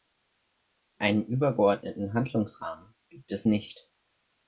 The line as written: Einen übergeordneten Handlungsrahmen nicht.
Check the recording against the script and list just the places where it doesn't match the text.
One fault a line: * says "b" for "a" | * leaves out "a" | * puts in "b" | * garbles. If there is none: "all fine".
* puts in "gibt es"